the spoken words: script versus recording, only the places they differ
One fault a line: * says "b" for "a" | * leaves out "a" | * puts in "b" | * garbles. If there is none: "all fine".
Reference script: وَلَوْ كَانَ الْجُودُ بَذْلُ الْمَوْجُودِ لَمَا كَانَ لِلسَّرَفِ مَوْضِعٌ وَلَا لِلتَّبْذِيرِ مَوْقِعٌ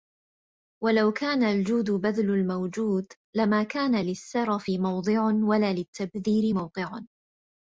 all fine